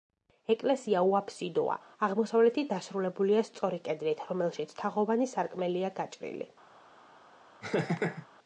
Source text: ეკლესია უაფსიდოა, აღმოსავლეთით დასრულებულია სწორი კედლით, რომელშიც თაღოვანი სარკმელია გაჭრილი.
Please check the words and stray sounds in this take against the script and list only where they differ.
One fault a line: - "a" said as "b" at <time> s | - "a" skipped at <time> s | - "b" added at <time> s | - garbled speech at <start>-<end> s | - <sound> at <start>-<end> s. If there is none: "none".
- laugh at 7.6-8.3 s